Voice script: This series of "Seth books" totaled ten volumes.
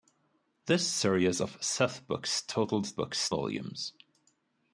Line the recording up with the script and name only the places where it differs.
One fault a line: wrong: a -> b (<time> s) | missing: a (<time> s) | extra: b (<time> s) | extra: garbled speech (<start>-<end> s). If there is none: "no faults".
wrong: ten -> books (3.0 s)